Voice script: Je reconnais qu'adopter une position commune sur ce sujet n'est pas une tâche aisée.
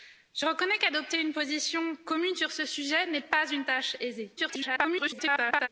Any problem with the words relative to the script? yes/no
yes